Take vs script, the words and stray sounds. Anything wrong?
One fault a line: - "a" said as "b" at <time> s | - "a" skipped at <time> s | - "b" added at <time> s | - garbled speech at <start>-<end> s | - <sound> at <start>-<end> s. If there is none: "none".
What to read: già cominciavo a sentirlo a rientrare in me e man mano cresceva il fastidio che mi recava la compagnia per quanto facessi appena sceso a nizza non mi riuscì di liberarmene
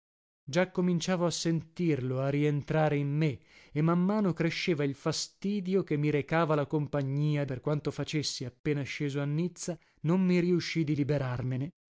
none